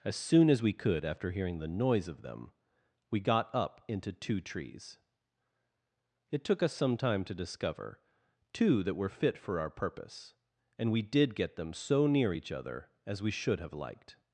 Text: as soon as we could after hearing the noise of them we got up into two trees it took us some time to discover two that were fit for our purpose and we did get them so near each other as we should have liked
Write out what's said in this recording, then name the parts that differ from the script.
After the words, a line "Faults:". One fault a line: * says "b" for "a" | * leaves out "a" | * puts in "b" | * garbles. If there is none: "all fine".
as soon as we could after hearing the noise of them we got up into two trees it took us some time to discover two that were fit for our purpose and we did get them so near each other as we should have liked
Faults:
all fine